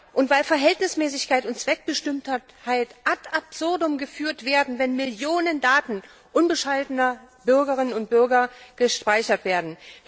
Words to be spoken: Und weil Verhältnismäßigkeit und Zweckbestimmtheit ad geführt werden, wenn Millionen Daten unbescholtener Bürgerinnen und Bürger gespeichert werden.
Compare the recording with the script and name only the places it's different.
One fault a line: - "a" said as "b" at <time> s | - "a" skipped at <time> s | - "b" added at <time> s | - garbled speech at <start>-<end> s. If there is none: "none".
- "absurdum" added at 3.3 s